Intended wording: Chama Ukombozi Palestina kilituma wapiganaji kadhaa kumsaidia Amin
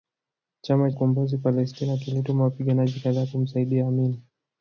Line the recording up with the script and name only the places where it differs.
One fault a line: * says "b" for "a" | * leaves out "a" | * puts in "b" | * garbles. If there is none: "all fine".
all fine